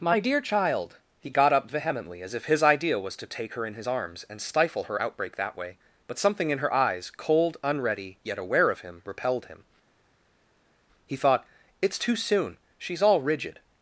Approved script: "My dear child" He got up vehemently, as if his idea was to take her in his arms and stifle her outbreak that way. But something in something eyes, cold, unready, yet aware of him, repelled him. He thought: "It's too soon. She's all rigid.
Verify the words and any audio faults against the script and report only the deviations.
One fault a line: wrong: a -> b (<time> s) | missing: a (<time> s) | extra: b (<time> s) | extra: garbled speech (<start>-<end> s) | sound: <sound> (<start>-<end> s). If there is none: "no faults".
wrong: something -> her (6.6 s)